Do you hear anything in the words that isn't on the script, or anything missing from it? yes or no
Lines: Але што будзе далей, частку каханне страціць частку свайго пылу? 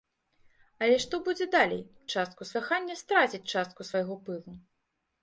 no